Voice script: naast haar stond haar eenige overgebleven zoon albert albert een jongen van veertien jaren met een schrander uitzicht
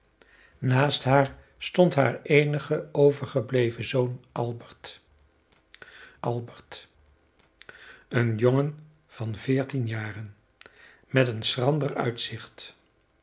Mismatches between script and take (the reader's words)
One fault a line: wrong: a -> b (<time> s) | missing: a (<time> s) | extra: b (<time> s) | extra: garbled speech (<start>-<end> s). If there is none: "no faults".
no faults